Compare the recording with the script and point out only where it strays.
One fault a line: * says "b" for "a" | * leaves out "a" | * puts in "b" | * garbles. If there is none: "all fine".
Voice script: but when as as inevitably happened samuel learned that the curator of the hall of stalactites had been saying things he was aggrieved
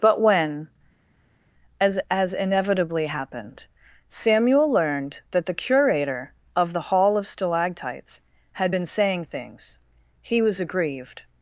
all fine